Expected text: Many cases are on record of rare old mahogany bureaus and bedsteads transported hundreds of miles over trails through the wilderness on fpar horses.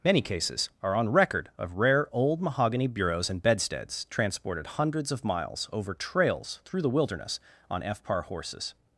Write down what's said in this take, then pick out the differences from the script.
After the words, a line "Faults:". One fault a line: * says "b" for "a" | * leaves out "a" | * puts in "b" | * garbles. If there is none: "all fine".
Many cases are on record of rare old mahogany bureaus and bedsteads transported hundreds of miles over trails through the wilderness on fpar horses.
Faults:
all fine